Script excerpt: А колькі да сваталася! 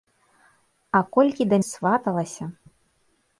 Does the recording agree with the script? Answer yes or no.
yes